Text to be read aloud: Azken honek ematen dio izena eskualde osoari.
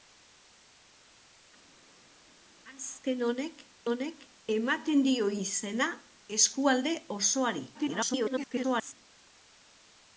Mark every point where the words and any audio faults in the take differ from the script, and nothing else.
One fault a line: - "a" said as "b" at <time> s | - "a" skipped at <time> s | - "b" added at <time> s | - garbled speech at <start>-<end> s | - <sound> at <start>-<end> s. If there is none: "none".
- "honek" added at 3.9 s
- garbled speech at 7.7-8.9 s